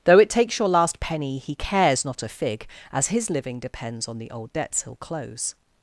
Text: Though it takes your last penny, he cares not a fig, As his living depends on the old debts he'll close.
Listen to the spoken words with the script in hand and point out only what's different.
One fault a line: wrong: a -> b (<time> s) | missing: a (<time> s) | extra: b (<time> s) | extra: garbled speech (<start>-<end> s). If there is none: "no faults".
no faults